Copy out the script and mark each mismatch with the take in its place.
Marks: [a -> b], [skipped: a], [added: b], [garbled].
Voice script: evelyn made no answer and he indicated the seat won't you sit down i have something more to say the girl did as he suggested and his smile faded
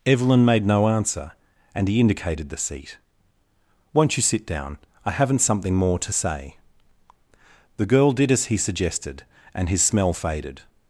evelyn made no answer and he indicated the seat won't you sit down i [have -> haven't] something more to say the girl did as he suggested and his [smile -> smell] faded